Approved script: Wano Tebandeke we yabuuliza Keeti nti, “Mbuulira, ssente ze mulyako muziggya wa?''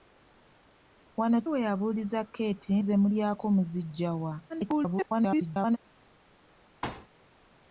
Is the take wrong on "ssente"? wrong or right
wrong